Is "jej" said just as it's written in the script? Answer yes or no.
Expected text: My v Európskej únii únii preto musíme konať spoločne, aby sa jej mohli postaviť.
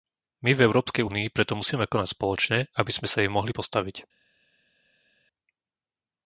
yes